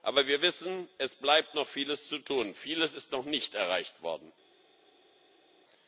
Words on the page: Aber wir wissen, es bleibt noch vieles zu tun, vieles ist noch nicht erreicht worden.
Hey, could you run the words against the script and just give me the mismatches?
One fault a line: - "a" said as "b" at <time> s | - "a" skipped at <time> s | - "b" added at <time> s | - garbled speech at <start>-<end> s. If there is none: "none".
none